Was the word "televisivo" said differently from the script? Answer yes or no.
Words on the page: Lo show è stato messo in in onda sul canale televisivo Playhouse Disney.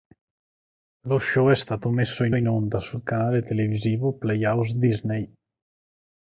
no